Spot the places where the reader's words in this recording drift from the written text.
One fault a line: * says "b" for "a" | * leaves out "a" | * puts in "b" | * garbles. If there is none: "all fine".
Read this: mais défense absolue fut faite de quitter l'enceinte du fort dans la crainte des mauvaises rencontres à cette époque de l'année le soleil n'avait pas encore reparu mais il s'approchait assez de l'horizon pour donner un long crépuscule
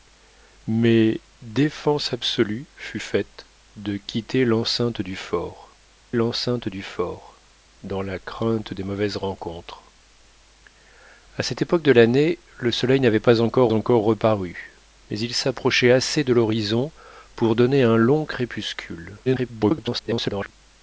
* puts in "l'enceinte du fort"
* puts in "encore"
* garbles